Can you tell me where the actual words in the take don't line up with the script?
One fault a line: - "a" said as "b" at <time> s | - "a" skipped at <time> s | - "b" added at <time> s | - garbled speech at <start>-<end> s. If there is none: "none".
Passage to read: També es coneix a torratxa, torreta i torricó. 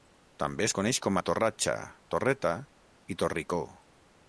- "com" added at 1.1 s